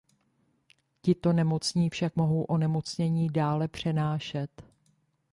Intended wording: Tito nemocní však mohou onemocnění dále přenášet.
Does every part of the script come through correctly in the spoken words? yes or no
yes